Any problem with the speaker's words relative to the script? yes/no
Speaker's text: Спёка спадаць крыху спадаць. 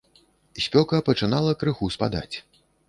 yes